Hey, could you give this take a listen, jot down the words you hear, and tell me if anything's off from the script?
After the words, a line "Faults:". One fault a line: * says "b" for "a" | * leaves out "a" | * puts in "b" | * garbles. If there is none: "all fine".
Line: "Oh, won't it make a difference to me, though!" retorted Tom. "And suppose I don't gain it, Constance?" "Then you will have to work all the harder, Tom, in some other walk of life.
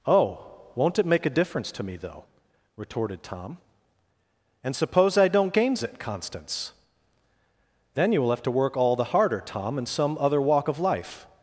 "Oh, won't it make a difference to me, though!" retorted Tom. "And suppose I don't gains it, Constance?" "Then you will have to work all the harder, Tom, in some other walk of life.
Faults:
* says "gains" for "gain"